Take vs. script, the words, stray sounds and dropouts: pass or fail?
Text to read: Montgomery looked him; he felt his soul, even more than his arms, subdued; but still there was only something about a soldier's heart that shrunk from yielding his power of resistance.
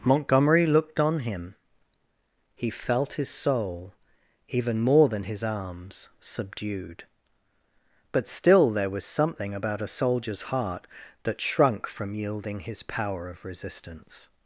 fail